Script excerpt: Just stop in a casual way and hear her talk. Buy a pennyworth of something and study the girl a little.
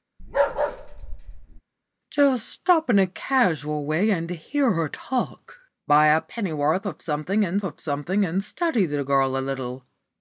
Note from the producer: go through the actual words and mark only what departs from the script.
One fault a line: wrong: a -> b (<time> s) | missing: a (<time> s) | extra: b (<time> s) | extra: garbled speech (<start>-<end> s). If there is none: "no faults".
extra: of something and (7.6 s)